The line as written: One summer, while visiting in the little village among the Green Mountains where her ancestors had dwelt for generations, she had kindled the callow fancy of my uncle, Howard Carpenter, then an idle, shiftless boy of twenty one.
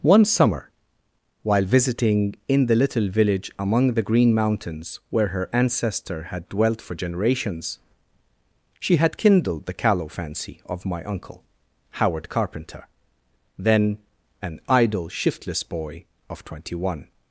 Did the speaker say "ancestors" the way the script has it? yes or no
no